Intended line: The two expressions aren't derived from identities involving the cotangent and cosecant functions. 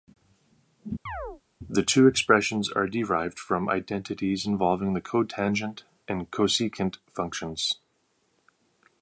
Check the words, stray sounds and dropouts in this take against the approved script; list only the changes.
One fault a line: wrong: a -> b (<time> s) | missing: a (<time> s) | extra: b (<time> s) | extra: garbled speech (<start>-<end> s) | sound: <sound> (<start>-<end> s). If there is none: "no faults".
sound: chirp (1.1-1.4 s)
wrong: aren't -> are (2.7 s)